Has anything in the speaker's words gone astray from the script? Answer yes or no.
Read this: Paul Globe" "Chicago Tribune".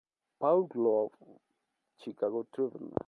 no